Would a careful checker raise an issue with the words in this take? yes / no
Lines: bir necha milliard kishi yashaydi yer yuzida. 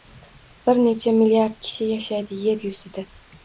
no